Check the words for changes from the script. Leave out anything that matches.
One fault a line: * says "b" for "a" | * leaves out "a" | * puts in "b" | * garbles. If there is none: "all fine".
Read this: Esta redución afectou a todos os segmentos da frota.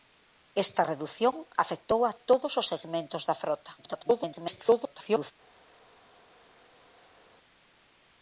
* garbles